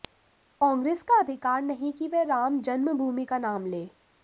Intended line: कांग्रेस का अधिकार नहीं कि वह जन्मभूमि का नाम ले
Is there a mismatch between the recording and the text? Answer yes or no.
yes